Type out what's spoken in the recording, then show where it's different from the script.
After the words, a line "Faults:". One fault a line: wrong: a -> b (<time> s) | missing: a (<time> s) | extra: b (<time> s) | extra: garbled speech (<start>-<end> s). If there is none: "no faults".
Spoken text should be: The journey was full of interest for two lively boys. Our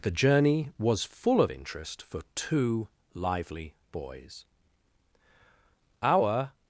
The journey was full of interest for two lively boys. Our
Faults:
no faults